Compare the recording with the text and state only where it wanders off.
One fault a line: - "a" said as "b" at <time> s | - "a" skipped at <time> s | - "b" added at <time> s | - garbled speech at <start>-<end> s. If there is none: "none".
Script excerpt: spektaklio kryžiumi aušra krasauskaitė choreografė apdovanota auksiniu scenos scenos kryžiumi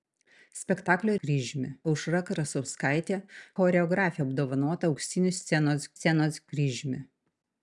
none